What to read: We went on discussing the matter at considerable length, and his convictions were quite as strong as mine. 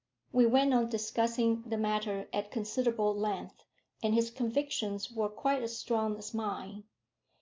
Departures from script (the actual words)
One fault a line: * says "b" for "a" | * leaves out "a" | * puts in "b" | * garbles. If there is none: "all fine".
all fine